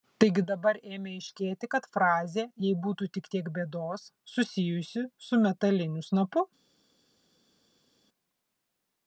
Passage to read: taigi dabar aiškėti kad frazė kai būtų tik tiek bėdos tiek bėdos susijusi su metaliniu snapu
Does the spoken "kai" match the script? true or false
false